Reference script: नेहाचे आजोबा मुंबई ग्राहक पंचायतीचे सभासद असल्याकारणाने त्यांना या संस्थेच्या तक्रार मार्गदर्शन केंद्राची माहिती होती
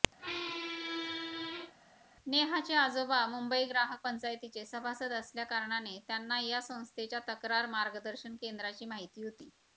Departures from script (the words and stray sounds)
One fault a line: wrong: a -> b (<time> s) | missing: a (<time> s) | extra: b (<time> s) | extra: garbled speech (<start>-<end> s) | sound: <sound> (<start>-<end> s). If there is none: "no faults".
sound: squeak (0.2-1.7 s)